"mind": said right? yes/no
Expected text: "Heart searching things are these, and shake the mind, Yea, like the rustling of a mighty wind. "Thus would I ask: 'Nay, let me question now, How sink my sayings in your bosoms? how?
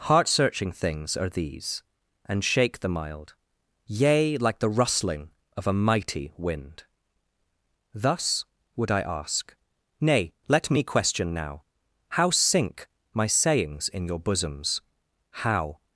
no